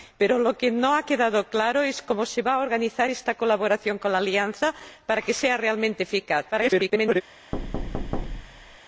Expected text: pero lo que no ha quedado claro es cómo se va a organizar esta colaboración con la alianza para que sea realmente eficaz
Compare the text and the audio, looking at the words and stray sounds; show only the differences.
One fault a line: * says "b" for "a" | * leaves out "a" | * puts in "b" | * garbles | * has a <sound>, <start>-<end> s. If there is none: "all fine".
* garbles
* has a thud, 7.5-8.8 s